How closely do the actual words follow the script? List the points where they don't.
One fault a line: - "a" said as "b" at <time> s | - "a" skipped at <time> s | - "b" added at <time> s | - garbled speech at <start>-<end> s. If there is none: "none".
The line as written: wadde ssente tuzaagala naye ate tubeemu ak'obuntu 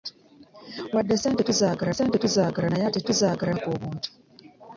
- "ssente tuzaagala" added at 1.9 s
- "tubeemu" said as "tuzaagala" at 3.1 s